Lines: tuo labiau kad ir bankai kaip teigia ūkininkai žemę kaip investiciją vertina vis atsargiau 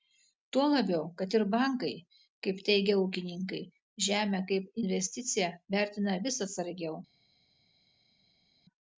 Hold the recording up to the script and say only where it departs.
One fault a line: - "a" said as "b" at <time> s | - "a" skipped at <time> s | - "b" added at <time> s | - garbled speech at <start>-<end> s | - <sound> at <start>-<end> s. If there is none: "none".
none